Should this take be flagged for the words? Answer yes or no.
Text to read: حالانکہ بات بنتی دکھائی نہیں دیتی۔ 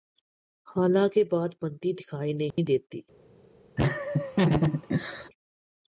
no